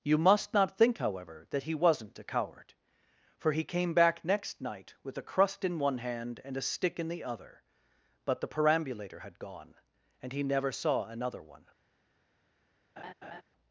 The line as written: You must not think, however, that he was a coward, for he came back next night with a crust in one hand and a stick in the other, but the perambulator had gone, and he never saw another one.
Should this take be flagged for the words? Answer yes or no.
yes